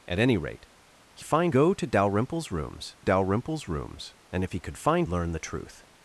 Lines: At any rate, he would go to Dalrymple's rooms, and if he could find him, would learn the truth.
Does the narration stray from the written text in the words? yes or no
yes